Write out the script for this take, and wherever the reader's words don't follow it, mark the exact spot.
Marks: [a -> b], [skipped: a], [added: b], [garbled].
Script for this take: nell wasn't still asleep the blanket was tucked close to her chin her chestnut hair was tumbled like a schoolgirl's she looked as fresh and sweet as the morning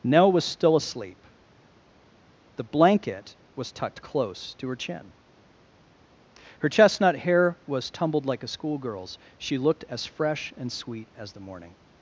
nell [wasn't -> was] still asleep the blanket was tucked close to her chin her chestnut hair was tumbled like a schoolgirl's she looked as fresh and sweet as the morning